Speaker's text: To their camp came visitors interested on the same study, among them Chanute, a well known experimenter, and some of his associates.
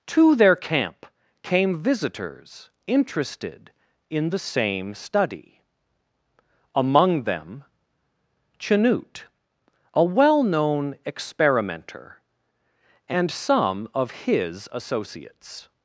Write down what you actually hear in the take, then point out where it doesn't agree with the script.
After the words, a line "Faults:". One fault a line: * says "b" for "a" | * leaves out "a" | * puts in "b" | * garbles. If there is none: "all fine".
To their camp came visitors interested in the same study, among them Chanute, a well known experimenter, and some of his associates.
Faults:
* says "in" for "on"